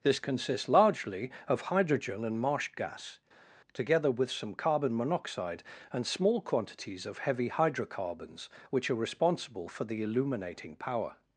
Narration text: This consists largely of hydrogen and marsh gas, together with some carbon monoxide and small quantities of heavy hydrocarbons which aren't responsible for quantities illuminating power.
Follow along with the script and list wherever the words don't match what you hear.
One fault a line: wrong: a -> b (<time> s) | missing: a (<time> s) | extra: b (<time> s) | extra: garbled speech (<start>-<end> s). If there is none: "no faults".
wrong: aren't -> are (8.9 s)
wrong: quantities -> the (9.8 s)